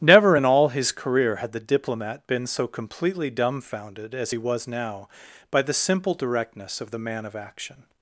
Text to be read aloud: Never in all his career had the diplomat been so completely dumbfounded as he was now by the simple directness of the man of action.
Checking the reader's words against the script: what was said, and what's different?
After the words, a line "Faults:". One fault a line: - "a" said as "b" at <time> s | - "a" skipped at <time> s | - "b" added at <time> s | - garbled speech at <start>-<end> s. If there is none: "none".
Never in all his career had the diplomat been so completely dumbfounded as he was now by the simple directness of the man of action.
Faults:
none